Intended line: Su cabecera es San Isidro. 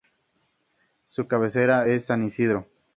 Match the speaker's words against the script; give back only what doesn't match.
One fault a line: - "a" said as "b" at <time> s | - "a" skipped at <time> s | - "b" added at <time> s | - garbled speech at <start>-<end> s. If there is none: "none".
none